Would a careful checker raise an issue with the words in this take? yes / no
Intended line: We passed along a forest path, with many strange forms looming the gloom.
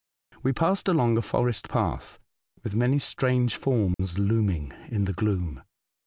yes